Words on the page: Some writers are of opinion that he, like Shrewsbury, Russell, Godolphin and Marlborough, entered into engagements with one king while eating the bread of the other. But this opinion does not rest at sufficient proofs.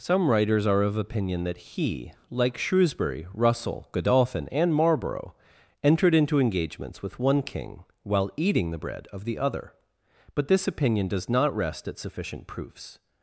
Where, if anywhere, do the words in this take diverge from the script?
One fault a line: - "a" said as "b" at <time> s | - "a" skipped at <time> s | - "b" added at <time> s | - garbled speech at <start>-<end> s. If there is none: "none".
none